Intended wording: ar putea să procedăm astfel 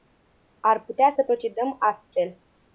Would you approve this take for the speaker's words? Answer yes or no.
yes